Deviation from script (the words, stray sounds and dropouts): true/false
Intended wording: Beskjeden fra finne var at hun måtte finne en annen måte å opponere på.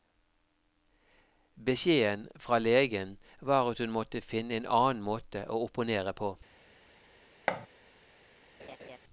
true